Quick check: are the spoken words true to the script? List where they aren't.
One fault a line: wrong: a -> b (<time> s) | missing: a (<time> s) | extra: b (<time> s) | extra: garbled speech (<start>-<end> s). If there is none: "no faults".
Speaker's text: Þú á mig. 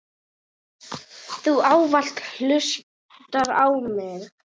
extra: ávallt hlustar (1.7 s)